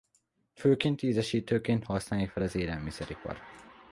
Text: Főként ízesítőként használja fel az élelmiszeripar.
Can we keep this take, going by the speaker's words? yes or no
yes